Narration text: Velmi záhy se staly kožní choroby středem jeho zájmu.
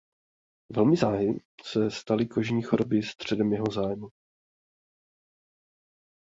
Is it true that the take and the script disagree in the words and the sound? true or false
false